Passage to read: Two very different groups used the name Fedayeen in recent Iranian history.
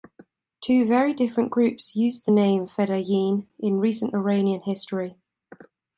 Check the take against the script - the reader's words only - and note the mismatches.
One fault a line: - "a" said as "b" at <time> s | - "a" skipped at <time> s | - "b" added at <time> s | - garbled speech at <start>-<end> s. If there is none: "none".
none